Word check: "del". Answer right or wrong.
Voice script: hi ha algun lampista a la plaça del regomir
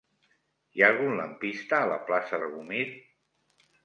wrong